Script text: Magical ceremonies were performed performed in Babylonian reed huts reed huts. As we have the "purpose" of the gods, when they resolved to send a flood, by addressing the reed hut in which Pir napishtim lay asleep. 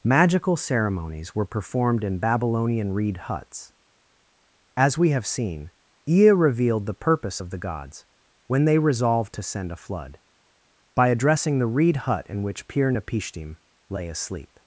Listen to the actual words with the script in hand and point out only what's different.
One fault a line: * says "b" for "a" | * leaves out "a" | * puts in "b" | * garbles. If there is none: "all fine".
* leaves out "performed"
* leaves out "reed huts"
* puts in "seen Ea revealed"